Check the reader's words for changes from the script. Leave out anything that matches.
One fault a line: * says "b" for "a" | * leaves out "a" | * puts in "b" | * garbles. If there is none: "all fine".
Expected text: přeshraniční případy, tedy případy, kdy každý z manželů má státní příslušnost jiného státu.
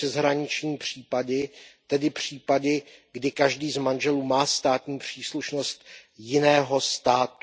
all fine